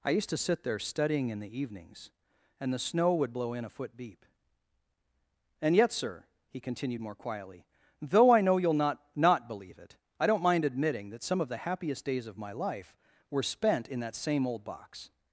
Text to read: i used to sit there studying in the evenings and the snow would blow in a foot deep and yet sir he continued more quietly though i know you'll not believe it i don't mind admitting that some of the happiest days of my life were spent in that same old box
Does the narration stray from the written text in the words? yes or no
yes